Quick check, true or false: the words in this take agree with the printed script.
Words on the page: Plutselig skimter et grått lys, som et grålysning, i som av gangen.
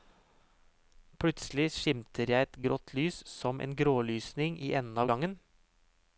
false